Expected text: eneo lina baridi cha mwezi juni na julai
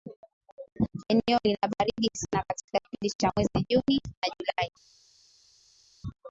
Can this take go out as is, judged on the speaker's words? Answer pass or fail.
fail